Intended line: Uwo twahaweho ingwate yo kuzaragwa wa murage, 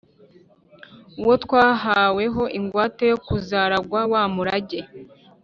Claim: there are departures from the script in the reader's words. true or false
false